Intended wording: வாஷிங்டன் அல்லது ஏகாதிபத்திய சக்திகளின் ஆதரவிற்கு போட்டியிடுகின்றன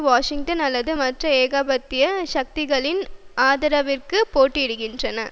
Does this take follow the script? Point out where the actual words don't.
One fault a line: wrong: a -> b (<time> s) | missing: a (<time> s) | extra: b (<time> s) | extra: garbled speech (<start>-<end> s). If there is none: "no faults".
extra: மற்ற (1.0 s)